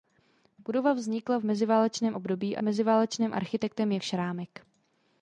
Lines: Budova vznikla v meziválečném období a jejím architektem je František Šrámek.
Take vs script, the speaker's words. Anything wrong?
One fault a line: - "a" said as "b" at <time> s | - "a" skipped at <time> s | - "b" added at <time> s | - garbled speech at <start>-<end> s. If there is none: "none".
- "jejím" said as "meziválečném" at 2.6 s
- "František" skipped at 4.0 s